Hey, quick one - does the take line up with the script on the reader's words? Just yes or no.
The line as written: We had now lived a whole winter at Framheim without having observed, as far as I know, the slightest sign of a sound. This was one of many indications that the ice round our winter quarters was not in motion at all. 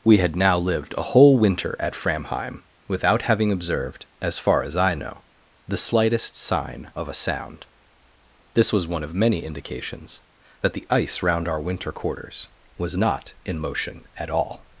yes